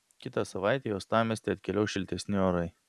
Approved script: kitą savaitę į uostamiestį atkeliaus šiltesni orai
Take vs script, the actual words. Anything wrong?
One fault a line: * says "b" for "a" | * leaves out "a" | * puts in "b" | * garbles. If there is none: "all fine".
all fine